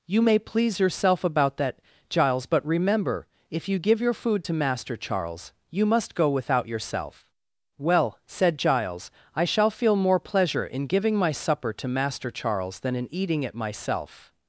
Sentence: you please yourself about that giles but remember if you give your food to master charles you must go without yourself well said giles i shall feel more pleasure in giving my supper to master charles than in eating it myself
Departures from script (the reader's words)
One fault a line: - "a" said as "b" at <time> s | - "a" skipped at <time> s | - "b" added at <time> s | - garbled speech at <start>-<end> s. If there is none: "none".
- "may" added at 0.2 s